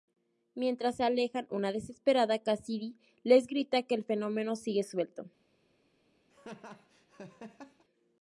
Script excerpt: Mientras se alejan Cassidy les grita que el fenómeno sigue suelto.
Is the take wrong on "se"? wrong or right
right